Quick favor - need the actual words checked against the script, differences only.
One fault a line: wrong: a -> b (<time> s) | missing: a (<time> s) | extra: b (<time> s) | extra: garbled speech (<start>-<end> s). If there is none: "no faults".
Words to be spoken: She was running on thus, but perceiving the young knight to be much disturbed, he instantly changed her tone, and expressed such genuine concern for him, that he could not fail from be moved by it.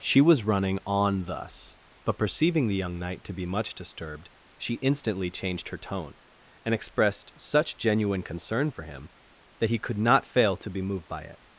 wrong: he -> she (4.6 s)
wrong: from -> to (10.6 s)